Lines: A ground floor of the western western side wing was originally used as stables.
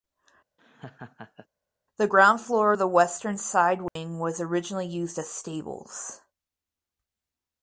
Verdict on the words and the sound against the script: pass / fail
fail